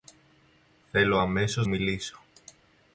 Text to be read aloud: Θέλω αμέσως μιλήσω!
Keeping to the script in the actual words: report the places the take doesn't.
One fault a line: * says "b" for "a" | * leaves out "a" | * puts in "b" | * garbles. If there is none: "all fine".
all fine